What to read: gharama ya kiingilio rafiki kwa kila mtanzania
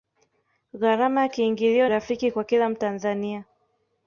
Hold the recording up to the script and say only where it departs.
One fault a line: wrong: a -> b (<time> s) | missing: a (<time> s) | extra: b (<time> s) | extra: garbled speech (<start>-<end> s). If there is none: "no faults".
no faults